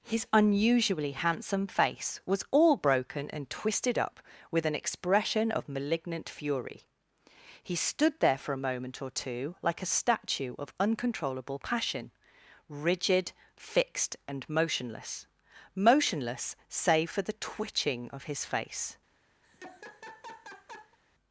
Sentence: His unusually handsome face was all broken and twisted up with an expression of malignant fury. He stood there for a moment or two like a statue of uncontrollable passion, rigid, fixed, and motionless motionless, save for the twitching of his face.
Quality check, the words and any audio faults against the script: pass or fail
fail